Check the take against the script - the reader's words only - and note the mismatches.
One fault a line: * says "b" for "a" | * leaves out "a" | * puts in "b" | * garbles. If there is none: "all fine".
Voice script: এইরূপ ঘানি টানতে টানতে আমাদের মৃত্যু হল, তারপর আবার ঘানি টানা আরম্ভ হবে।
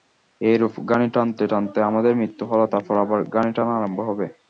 all fine